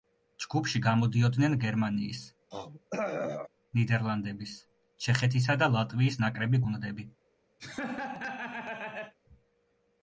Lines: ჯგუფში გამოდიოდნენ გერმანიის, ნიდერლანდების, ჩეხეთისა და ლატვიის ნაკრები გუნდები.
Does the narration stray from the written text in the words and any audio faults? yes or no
yes